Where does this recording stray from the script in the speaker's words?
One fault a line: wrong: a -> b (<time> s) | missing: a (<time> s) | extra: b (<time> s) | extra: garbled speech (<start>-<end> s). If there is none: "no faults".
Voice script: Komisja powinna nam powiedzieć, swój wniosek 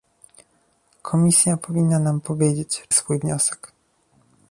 no faults